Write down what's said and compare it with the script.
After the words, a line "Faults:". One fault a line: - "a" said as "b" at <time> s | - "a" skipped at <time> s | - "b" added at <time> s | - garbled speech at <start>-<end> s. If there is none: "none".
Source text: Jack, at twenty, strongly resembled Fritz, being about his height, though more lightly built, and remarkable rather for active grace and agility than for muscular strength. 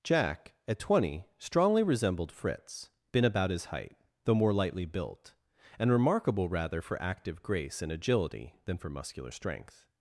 Jack, at twenty, strongly resembled Fritz, been about his height, though more lightly built, and remarkable rather for active grace and agility than for muscular strength.
Faults:
- "being" said as "been" at 3.1 s